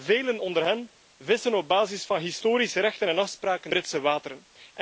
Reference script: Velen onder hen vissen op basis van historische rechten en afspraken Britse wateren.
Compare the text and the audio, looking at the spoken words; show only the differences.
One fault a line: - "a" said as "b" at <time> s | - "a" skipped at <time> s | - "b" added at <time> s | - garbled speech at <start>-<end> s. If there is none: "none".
none